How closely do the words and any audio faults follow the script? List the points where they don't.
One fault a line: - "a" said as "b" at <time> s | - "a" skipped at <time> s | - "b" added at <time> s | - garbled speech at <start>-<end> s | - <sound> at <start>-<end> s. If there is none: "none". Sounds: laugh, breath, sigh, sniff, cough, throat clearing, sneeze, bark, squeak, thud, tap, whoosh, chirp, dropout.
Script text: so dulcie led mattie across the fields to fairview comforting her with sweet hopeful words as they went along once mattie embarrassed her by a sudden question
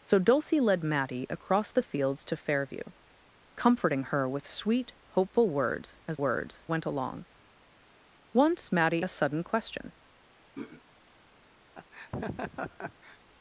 - "they" said as "words" at 6.1 s
- "embarrassed her by" skipped at 9.1 s
- throat clearing at 10.5-10.8 s
- laugh at 11.8-13.2 s